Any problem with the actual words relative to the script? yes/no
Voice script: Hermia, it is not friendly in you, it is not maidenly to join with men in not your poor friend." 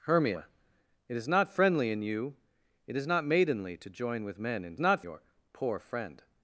no